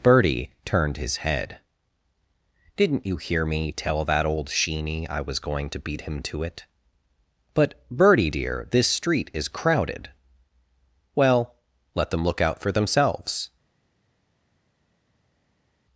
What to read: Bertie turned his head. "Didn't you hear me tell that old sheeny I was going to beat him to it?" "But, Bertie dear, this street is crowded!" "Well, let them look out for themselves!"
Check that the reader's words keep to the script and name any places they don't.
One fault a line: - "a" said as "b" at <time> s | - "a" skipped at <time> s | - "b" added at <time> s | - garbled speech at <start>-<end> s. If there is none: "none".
none